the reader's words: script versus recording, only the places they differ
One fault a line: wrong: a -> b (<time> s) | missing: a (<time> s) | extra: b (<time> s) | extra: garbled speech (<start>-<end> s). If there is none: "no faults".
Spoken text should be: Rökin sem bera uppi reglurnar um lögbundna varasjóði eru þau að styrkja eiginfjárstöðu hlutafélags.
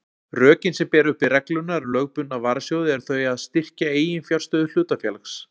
no faults